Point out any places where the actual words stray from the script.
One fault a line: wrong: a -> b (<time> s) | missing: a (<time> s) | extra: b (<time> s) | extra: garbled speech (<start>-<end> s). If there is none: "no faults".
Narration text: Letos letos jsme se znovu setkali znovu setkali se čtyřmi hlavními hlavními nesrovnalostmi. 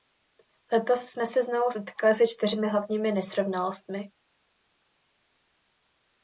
missing: letos (1.0 s)
missing: znovu setkali (2.1 s)
missing: hlavními (3.1 s)